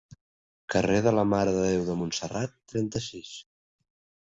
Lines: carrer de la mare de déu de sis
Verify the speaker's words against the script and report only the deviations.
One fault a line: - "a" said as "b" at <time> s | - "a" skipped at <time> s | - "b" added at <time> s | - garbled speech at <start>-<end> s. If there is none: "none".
- "montserrat trenta" added at 2.0 s